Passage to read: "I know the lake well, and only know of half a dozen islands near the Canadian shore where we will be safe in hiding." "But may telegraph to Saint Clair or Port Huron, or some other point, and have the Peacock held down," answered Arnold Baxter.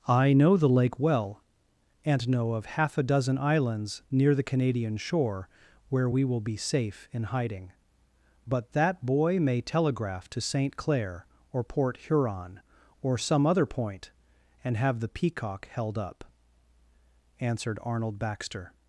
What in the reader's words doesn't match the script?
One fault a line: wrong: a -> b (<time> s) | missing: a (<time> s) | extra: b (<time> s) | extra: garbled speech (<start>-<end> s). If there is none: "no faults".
missing: only (2.3 s)
extra: that boy (8.7 s)
wrong: down -> up (16.0 s)